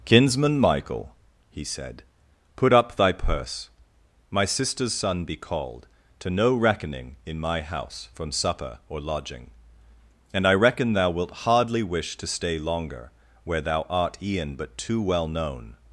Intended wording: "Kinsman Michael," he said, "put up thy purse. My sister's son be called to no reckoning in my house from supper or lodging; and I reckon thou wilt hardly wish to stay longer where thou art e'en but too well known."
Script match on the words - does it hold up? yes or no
yes